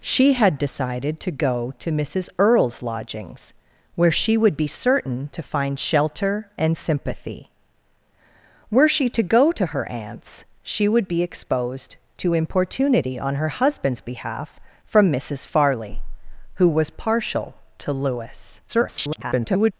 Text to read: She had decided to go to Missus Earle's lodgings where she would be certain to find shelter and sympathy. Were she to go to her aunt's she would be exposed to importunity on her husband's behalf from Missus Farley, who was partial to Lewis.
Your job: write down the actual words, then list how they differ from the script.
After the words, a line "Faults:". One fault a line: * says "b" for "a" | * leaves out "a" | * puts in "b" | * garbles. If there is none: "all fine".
She had decided to go to Missus Earle's lodgings where she would be certain to find shelter and sympathy. Were she to go to her aunt's she would be exposed to importunity on her husband's behalf from Missus Farley, who was partial to Lewis. [garbled]
Faults:
* garbles